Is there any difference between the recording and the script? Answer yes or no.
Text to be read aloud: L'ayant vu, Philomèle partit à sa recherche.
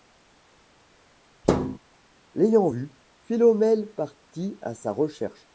no